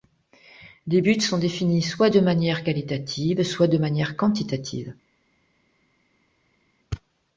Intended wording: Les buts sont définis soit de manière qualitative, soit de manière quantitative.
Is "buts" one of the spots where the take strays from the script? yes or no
no